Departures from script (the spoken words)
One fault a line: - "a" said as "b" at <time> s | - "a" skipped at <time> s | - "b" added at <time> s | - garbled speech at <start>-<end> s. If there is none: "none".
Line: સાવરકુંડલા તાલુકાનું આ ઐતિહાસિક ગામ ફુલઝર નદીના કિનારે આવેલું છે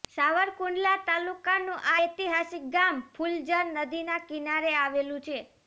none